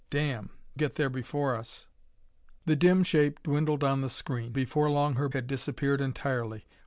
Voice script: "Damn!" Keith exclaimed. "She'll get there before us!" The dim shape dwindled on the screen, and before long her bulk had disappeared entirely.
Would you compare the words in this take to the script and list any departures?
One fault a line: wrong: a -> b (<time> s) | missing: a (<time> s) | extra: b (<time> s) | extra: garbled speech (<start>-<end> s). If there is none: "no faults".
missing: Keith exclaimed She'll (0.5 s)
missing: and (4.6 s)
missing: bulk (5.3 s)